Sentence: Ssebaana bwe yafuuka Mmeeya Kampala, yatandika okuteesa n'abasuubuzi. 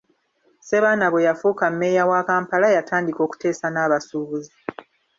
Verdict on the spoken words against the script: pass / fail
fail